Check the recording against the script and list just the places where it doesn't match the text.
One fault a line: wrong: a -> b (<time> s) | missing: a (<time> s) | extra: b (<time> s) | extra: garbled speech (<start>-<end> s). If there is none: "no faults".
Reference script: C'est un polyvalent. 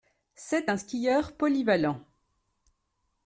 extra: skieur (0.7 s)